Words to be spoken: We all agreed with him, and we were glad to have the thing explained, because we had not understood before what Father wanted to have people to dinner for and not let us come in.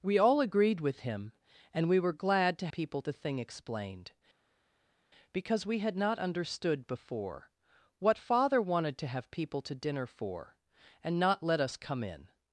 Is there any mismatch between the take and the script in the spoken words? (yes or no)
yes